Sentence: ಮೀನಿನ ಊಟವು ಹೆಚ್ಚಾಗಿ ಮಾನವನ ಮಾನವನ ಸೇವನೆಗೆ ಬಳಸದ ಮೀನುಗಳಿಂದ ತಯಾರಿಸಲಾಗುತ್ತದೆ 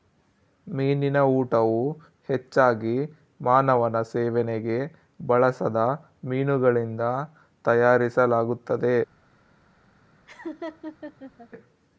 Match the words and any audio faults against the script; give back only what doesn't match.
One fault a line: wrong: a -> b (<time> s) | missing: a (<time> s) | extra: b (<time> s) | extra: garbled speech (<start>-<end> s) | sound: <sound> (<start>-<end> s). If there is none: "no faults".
missing: ಮಾನವನ (4.0 s)
sound: laugh (10.3-11.5 s)